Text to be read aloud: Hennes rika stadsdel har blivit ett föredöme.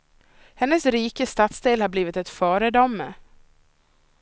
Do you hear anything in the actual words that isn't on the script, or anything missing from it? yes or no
no